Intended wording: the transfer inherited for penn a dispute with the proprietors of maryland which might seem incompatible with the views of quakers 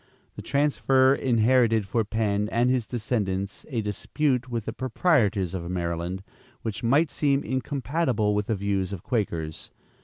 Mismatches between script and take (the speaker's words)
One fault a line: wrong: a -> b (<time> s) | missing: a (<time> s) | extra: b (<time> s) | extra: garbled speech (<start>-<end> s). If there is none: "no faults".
extra: and his descendants (2.5 s)